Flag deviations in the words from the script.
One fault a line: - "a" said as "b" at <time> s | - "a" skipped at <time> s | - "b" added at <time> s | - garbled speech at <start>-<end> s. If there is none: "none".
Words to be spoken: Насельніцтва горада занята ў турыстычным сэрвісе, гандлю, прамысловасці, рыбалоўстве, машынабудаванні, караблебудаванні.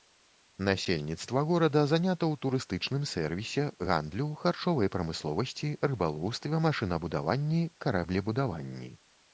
- "харчовай" added at 4.5 s